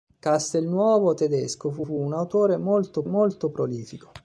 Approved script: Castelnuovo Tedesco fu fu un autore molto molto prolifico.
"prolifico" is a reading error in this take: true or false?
false